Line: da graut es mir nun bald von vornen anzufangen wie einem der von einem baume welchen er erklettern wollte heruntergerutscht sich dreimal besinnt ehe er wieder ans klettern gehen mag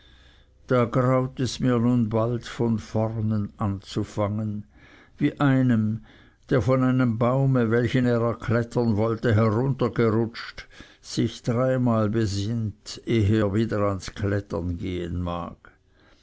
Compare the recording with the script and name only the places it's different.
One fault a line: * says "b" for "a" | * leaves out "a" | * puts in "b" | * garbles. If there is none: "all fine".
all fine